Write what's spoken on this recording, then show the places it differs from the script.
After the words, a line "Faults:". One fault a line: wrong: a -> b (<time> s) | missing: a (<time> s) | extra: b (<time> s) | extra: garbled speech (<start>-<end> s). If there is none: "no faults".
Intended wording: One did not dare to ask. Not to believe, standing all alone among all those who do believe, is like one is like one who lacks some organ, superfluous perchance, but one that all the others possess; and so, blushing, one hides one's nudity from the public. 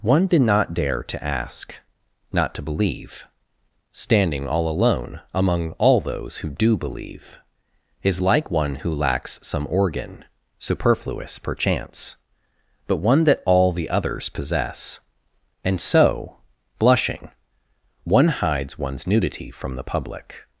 One did not dare to ask. Not to believe, standing all alone among all those who do believe, is like one who lacks some organ, superfluous perchance, but one that all the others possess; and so, blushing, one hides one's nudity from the public.
Faults:
missing: is like one (8.8 s)